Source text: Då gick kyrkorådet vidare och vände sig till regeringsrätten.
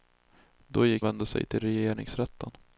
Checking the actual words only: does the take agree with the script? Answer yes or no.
no